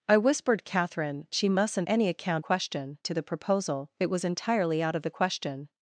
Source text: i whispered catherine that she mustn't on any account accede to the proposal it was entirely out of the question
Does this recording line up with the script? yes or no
no